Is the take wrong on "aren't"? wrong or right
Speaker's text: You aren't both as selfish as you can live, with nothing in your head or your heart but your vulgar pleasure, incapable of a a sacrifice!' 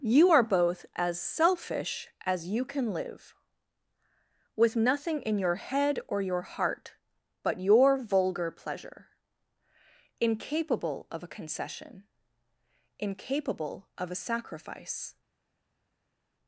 wrong